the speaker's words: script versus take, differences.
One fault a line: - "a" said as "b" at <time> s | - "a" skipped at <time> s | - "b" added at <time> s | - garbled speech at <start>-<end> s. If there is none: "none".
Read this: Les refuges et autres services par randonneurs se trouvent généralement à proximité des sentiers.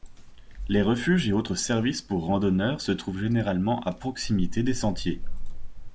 - "par" said as "pour" at 2.0 s